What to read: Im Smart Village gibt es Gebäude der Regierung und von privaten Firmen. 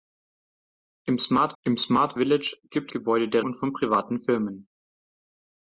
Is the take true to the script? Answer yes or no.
no